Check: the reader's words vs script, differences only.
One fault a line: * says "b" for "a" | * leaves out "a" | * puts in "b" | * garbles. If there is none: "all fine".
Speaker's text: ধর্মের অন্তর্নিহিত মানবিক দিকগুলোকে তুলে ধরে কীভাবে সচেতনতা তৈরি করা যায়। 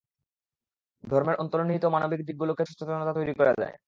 * leaves out "তুলে ধরে কীভাবে"